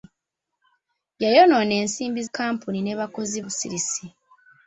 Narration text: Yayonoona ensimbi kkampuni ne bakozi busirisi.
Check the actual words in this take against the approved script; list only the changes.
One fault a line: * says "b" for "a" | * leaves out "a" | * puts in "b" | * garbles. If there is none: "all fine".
all fine